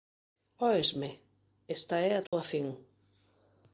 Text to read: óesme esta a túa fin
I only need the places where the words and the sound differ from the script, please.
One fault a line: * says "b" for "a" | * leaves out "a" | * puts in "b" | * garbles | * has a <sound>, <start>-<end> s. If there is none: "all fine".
* puts in "é"
* has a dropout, 2.3-2.3 s